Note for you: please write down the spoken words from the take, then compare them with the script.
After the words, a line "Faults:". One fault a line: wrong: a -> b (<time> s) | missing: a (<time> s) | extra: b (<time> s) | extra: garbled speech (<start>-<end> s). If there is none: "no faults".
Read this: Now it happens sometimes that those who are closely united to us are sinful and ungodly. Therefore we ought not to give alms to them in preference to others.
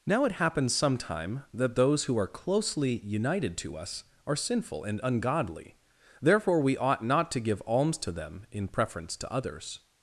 Now it happens sometime that those who are closely united to us are sinful and ungodly. Therefore we ought not to give alms to them in preference to others.
Faults:
wrong: sometimes -> sometime (0.7 s)